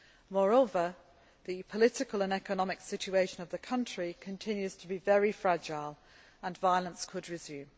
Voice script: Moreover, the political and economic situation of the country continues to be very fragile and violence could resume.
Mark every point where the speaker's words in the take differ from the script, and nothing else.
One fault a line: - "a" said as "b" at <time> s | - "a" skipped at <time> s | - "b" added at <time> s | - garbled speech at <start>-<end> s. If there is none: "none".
none